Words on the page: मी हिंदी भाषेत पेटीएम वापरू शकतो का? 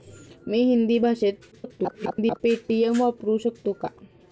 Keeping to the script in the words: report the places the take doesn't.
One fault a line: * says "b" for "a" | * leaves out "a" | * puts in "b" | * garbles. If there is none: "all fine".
* garbles